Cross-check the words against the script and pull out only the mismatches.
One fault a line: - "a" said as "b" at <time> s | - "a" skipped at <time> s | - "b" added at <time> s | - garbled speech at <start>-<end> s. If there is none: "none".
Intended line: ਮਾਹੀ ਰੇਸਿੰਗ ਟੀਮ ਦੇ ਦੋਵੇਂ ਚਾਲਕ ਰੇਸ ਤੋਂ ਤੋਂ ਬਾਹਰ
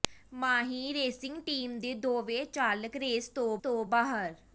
none